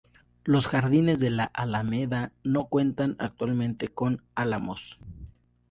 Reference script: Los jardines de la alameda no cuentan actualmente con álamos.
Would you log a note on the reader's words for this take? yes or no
no